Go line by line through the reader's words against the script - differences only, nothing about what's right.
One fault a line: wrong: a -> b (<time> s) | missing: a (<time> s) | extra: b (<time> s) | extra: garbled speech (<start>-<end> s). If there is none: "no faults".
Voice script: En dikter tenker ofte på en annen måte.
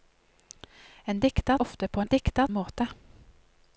missing: tenker (1.6 s)
wrong: annen -> dikter (2.1 s)